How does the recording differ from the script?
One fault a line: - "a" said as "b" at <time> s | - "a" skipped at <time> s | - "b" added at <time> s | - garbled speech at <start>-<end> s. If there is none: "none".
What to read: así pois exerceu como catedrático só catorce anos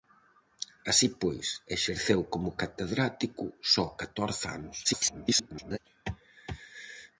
- garbled speech at 4.8-5.8 s